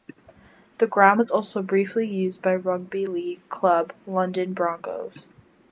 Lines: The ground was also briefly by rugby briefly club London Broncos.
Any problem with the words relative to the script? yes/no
yes